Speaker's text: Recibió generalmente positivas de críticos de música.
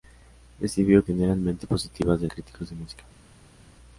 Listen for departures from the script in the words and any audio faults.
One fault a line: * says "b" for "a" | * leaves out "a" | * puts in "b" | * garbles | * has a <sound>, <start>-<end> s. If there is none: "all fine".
all fine